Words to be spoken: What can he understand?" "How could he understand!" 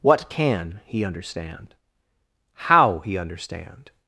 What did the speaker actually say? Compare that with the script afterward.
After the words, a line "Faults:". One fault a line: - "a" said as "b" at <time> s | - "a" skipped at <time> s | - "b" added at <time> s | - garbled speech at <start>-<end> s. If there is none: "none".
What can he understand?" "How he understand!"
Faults:
- "could" skipped at 3.0 s